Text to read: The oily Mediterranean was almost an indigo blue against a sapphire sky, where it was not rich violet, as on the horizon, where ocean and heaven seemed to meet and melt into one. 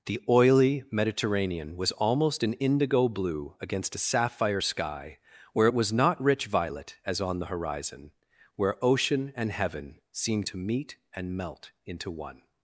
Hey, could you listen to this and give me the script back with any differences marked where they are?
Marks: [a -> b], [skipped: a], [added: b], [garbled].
The oily Mediterranean was almost an indigo blue against a sapphire sky, where it was not rich violet, as on the horizon, where ocean and heaven seemed to meet and melt into one.